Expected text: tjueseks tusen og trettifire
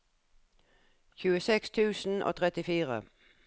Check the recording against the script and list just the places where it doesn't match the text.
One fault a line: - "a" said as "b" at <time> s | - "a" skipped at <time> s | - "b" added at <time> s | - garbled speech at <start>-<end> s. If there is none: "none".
none